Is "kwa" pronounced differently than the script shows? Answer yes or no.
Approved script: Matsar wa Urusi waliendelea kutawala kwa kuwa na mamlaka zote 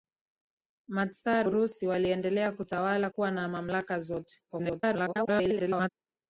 yes